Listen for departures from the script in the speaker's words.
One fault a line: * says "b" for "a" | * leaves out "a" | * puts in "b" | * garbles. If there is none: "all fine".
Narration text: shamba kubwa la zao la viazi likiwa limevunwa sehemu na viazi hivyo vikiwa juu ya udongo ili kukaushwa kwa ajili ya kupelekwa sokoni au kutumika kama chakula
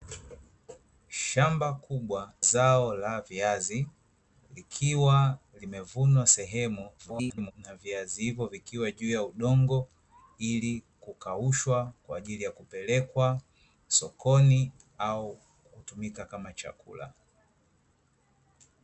* leaves out "la"
* garbles